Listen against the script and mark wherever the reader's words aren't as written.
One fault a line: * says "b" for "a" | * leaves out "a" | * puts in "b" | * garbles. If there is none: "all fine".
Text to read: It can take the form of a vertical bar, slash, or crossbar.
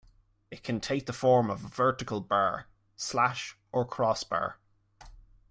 all fine